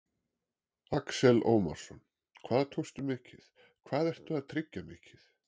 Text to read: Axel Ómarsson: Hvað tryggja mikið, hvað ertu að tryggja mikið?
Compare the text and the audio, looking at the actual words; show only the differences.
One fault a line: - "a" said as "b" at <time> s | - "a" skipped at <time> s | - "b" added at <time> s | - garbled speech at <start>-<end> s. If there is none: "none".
- "tryggja" said as "tókstu" at 2.8 s